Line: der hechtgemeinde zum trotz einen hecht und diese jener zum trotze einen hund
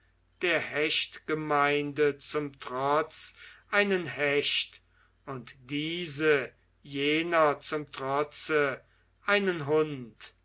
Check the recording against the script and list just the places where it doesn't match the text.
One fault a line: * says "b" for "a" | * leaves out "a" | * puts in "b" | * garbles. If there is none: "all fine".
all fine